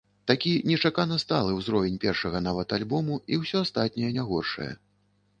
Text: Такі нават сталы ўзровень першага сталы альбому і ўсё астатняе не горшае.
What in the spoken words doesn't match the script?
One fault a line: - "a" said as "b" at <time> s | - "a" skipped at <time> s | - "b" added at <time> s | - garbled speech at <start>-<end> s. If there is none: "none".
- "нават" said as "нечакана" at 0.7 s
- "сталы" said as "нават" at 2.5 s